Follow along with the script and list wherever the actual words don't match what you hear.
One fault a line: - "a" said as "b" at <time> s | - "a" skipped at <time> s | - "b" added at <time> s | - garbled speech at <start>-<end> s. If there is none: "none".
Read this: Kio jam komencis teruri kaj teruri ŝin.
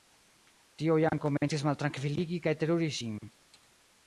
- "Kio" said as "Tio" at 0.8 s
- "teruri" said as "maltrankviligi" at 1.7 s